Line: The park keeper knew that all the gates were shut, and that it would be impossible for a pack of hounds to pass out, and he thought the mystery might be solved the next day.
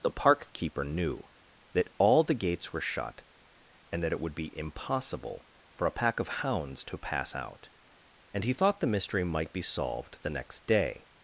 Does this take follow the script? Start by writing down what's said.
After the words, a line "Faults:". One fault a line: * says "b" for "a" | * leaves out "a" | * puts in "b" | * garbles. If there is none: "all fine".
The park keeper knew that all the gates were shut, and that it would be impossible for a pack of hounds to pass out, and he thought the mystery might be solved the next day.
Faults:
all fine